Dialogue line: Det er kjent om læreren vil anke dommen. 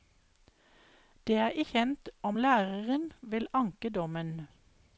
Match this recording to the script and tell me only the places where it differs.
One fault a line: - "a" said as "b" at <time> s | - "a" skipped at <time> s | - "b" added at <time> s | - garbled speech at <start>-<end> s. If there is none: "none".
none